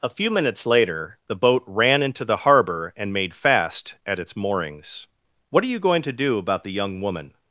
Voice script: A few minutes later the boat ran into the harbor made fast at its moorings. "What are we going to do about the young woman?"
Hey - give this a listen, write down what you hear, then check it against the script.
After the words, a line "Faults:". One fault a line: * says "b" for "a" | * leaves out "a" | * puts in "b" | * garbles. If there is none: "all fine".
A few minutes later the boat ran into the harbor and made fast at its moorings. "What are you going to do about the young woman?"
Faults:
* puts in "and"
* says "you" for "we"